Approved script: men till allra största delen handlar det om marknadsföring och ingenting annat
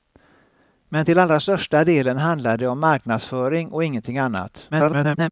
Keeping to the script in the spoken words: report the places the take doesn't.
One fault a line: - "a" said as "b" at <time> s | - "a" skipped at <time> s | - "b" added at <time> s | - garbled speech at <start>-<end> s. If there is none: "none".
- garbled speech at 4.7-5.3 s